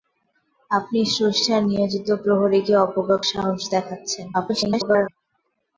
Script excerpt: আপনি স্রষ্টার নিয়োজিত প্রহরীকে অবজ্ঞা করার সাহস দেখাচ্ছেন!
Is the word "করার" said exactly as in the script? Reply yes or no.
no